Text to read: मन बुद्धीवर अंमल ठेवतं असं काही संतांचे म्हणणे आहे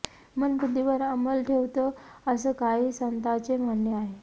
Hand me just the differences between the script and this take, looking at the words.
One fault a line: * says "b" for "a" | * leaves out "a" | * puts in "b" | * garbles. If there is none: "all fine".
all fine